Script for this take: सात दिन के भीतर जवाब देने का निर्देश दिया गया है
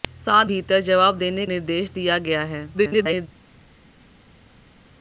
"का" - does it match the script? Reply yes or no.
no